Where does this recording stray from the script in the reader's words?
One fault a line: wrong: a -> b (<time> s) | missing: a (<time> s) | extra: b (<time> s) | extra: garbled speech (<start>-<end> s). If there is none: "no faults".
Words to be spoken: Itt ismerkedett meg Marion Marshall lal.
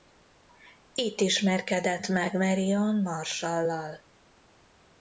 no faults